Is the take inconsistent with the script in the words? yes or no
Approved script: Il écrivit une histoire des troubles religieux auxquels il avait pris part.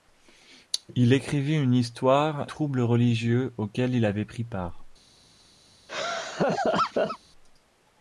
yes